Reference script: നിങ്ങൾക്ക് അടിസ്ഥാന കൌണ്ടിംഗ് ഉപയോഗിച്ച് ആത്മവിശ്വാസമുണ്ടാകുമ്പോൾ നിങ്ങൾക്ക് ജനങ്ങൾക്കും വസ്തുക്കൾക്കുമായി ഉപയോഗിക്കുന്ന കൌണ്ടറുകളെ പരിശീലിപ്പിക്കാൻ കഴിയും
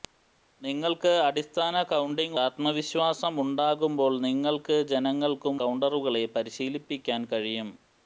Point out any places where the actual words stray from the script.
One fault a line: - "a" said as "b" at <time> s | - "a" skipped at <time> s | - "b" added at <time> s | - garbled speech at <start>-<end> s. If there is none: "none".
- "ഉപയോഗിച്ച്" skipped at 2.4 s
- "വസ്തുക്കൾക്കുമായി ഉപയോഗിക്കുന്ന" skipped at 5.6 s